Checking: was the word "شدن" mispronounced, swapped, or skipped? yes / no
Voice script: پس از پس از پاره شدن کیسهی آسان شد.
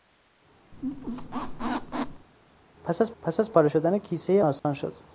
no